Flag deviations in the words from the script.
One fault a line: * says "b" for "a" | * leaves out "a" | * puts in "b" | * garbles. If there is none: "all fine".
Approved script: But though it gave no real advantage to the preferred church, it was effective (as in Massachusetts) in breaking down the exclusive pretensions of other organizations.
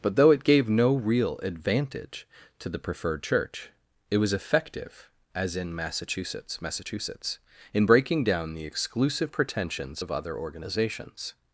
* puts in "Massachusetts"